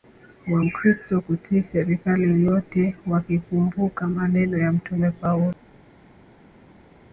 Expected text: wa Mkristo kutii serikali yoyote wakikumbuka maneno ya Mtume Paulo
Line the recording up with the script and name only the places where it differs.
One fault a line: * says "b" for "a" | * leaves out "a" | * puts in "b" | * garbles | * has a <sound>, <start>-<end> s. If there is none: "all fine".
all fine